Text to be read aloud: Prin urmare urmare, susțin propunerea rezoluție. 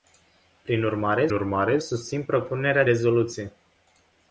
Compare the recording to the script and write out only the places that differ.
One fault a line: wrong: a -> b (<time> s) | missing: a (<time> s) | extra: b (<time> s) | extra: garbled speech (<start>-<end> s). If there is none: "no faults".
no faults